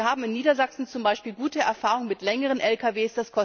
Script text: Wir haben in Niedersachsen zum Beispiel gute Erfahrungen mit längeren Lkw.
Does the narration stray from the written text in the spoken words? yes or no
no